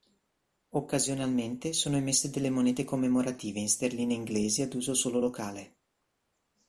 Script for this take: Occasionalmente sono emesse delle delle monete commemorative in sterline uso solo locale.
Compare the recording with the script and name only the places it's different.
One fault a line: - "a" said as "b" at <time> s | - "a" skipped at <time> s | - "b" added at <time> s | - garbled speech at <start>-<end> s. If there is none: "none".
- "delle" skipped at 2.5 s
- "inglesi ad" added at 4.2 s